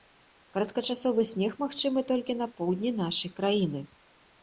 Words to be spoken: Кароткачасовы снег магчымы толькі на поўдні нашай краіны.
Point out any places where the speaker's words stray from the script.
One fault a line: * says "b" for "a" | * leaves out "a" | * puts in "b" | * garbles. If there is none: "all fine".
all fine